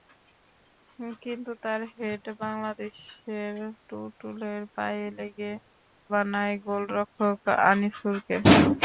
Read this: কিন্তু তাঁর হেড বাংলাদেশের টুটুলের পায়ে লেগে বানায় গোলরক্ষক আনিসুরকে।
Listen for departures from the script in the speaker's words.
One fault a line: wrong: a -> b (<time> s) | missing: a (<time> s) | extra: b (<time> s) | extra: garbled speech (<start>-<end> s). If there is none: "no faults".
no faults